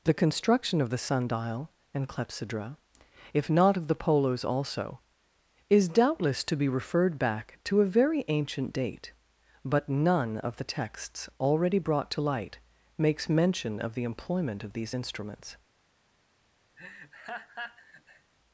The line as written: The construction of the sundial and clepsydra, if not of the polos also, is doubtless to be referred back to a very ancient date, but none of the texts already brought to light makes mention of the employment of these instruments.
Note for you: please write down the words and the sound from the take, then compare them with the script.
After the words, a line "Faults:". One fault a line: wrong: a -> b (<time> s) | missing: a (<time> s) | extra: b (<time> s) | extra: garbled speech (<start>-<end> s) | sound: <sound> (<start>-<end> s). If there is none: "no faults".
The construction of the sundial and clepsydra, if not of the polos also, is doubtless to be referred back to a very ancient date, but none of the texts already brought to light makes mention of the employment of these instruments.
Faults:
sound: laugh (16.8-18.3 s)